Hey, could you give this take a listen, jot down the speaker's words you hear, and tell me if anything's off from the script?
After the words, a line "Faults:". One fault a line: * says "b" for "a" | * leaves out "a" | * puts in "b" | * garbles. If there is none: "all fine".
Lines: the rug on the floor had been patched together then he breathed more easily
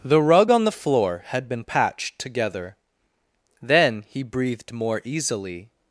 the rug on the floor had been patched together then he breathed more easily
Faults:
all fine